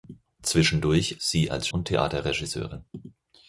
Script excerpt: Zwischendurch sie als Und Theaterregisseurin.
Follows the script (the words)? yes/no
yes